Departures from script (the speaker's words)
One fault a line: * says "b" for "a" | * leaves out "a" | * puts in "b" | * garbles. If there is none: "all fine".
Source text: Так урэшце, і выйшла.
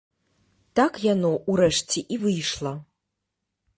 * puts in "яно"